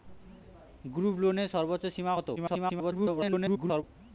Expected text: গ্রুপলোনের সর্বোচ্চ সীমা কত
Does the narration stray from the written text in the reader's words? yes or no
yes